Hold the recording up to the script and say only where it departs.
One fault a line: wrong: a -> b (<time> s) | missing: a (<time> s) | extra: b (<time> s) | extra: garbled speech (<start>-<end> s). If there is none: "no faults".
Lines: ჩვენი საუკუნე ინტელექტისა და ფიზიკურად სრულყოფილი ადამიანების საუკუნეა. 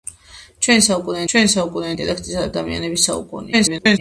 extra: ჩვენი საუკუნე (1.3 s)
missing: ფიზიკურად სრულყოფილი (2.5 s)
extra: garbled speech (3.5-4.0 s)